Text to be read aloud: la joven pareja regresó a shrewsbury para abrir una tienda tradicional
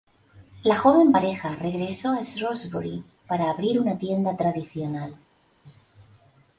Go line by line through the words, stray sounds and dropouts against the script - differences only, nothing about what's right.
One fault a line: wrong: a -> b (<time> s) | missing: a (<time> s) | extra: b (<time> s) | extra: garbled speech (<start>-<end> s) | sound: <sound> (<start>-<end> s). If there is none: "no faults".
no faults